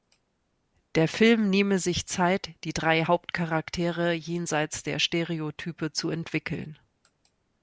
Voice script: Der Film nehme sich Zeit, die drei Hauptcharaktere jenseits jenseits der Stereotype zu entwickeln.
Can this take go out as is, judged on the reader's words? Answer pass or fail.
fail